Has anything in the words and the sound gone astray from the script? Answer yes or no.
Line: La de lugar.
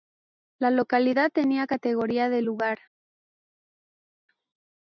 yes